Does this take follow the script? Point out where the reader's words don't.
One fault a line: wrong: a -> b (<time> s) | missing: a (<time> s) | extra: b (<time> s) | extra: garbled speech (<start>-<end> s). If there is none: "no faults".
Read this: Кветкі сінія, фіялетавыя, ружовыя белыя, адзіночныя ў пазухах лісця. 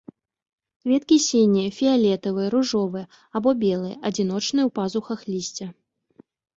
extra: або (3.4 s)